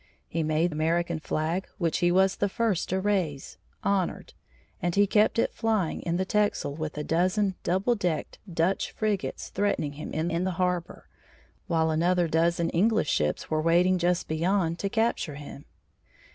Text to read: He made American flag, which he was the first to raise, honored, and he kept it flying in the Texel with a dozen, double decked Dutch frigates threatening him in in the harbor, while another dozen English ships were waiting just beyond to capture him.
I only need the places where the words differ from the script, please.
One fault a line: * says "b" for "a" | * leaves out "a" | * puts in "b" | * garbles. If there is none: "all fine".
all fine